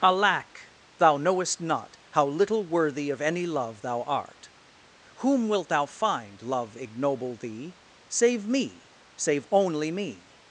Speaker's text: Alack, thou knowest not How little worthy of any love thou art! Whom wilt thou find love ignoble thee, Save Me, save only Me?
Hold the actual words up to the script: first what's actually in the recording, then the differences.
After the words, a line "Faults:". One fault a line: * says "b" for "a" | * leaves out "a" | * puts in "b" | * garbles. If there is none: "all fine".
Alack, thou knowest not How little worthy of any love thou art! Whom wilt thou find love ignoble thee, Save Me, save only Me?
Faults:
all fine